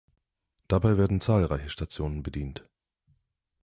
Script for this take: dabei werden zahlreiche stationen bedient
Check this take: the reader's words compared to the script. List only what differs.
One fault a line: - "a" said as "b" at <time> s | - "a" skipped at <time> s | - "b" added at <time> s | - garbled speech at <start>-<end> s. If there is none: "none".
none